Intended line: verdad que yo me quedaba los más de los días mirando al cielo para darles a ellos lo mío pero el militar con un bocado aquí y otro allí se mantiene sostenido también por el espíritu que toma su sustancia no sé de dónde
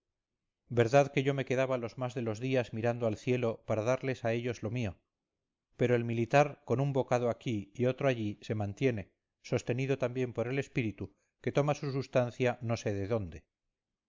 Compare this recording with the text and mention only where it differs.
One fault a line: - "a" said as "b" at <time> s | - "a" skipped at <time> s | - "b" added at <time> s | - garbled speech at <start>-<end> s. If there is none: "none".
none